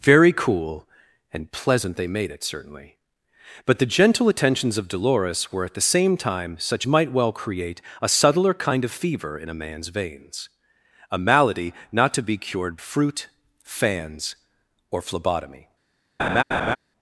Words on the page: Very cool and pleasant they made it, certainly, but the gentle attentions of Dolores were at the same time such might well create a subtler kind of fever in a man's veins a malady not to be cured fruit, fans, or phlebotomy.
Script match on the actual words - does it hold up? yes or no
yes